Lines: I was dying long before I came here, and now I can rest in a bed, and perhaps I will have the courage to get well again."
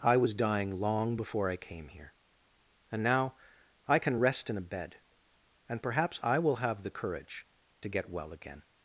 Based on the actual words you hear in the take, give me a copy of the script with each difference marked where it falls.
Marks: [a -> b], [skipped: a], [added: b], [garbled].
I was dying long before I came here, and now I can rest in a bed, and perhaps I will have the courage to get well again."